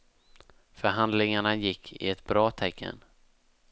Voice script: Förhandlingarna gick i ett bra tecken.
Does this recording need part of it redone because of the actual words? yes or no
no